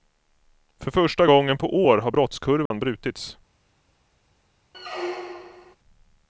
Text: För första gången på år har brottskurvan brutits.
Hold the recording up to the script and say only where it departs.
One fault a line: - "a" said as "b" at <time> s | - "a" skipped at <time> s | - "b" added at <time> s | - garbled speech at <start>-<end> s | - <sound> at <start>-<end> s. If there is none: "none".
- dropout at 2.7-2.7 s
- squeak at 4.7-5.8 s